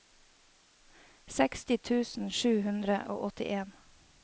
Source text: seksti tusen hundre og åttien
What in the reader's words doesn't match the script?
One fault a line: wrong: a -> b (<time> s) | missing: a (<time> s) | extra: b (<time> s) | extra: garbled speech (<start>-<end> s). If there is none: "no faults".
extra: sju (2.4 s)